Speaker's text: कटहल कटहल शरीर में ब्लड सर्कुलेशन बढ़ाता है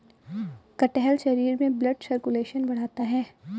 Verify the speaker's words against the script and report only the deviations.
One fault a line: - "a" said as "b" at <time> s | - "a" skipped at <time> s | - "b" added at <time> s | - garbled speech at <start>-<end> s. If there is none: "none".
- "कटहल" skipped at 1.2 s